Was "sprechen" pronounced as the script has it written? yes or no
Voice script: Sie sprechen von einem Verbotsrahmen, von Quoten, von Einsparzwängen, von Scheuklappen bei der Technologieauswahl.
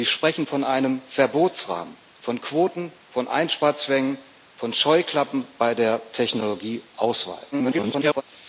yes